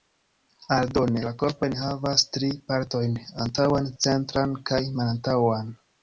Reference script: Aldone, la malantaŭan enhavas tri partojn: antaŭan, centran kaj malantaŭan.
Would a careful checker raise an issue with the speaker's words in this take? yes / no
yes